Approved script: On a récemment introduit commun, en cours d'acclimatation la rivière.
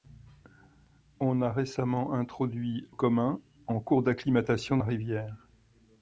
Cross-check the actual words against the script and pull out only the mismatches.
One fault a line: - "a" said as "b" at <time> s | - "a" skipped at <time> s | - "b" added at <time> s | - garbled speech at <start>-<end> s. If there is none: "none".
none